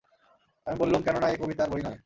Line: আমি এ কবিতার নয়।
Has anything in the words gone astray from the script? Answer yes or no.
yes